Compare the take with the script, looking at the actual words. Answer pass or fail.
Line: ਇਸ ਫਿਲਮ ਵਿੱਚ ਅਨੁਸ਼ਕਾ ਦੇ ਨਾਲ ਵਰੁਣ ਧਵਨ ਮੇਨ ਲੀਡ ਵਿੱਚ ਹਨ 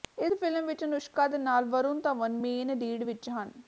pass